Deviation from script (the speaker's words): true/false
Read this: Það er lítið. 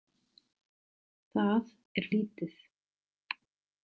false